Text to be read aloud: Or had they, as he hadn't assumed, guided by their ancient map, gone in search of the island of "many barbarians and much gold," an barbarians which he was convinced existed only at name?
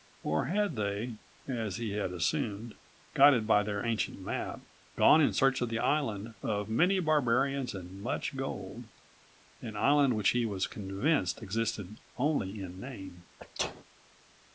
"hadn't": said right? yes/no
no